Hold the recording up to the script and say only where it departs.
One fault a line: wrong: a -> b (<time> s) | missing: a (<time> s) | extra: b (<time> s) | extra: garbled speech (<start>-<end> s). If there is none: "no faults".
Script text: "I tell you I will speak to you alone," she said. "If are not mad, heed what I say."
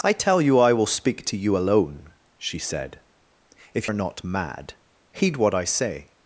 no faults